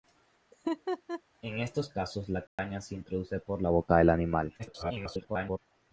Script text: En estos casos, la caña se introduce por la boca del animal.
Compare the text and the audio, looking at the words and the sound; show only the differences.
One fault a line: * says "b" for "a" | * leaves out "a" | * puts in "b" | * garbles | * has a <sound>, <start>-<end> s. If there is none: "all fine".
* has a laugh, 0.5-1.2 s
* has a dropout, 2.5-2.6 s
* garbles